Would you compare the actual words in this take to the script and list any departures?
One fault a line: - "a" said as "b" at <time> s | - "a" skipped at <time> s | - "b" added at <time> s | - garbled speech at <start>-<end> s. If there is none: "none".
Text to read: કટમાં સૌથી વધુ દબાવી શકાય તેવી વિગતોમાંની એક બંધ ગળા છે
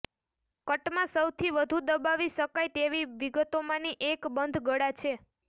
none